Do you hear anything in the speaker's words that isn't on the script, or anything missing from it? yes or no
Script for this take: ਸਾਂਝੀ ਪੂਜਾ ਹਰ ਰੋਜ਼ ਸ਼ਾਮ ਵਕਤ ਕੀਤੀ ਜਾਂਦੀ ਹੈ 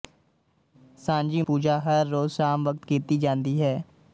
no